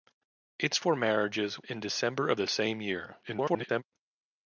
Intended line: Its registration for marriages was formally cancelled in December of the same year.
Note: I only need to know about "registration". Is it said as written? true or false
false